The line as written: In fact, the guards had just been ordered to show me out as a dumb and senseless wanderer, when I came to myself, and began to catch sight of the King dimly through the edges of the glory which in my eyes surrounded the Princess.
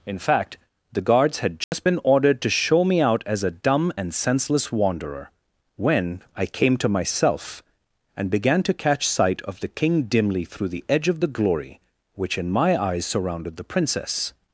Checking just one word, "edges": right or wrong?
wrong